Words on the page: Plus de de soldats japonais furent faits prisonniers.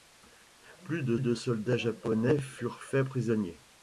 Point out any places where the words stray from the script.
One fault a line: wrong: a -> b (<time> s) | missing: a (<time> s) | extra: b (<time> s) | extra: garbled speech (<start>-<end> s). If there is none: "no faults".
no faults